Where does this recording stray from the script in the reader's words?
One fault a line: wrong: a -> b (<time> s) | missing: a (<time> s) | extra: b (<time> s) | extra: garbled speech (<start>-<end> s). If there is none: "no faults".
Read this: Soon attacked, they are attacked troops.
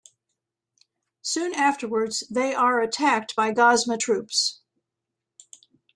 wrong: attacked -> afterwards (1.5 s)
extra: by Gozma (3.3 s)